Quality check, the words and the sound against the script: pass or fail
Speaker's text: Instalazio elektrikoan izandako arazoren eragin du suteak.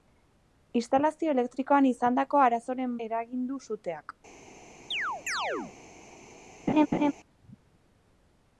fail